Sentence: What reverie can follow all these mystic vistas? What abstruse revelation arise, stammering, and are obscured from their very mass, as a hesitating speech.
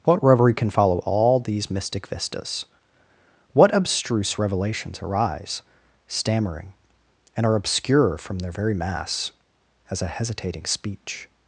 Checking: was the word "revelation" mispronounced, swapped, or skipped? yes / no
yes